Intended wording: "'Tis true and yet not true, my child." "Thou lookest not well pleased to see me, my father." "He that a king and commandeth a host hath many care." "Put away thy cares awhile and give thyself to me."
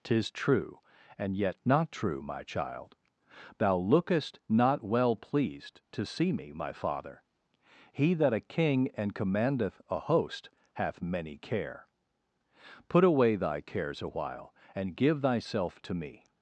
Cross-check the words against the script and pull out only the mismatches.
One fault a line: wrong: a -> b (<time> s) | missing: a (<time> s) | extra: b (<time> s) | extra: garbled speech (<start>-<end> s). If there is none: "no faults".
no faults